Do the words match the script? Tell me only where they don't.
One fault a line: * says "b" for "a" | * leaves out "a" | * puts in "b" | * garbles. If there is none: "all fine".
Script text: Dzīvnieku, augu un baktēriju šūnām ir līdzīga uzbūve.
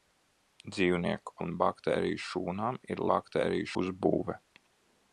* leaves out "augu"
* says "baktēriju" for "līdzīga"